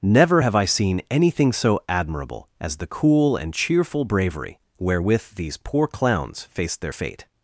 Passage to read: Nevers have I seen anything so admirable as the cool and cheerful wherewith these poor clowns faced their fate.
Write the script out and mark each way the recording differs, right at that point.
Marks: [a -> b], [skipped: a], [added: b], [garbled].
[Nevers -> Never] have I seen anything so admirable as the cool and cheerful [added: bravery] wherewith these poor clowns faced their fate.